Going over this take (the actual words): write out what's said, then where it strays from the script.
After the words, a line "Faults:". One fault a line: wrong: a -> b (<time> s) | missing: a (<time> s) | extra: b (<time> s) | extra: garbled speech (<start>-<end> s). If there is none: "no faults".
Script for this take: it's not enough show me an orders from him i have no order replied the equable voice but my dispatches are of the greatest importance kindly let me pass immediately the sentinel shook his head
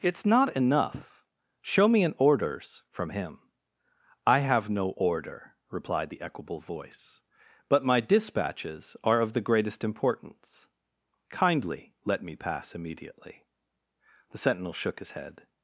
it's not enough show me an orders from him i have no order replied the equable voice but my dispatches are of the greatest importance kindly let me pass immediately the sentinel shook his head
Faults:
no faults